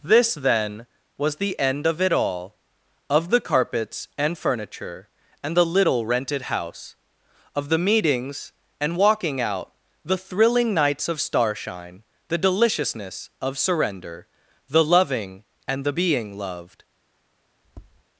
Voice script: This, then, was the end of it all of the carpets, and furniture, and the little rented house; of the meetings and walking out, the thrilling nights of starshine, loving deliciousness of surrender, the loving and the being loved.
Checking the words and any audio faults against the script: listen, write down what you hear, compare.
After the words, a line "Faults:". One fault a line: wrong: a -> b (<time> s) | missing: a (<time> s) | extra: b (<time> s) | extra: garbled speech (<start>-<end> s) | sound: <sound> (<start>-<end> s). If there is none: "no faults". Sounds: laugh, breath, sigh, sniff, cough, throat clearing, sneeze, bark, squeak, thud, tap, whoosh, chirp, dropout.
This, then, was the end of it all of the carpets, and furniture, and the little rented house; of the meetings and walking out, the thrilling nights of starshine, the deliciousness of surrender, the loving and the being loved.
Faults:
wrong: loving -> the (12.3 s)
sound: tap (17.6-18.0 s)